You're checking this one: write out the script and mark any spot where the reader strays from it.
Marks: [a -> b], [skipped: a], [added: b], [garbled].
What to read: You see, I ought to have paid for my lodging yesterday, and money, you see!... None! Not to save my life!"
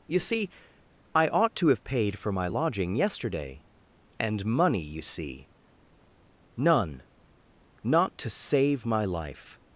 You see, I ought to have paid for my lodging yesterday, and money, you see!... None! Not to save my life!"